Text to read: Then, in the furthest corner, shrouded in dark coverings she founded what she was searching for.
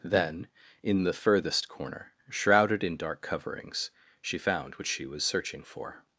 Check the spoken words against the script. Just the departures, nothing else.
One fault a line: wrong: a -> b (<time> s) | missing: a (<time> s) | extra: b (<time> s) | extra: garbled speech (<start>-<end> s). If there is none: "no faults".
wrong: founded -> found (4.4 s)